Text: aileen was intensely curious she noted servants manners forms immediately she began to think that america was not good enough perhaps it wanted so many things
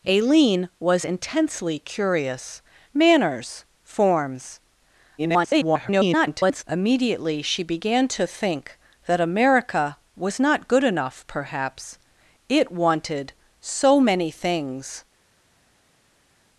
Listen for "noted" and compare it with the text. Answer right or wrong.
wrong